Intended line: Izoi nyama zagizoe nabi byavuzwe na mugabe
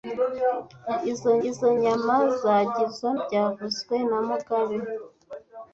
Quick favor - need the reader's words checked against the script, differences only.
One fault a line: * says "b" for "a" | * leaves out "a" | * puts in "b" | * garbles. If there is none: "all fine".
* puts in "izoi"
* leaves out "nabi"